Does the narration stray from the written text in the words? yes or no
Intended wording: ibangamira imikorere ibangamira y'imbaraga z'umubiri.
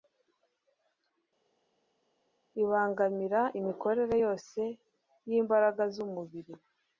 yes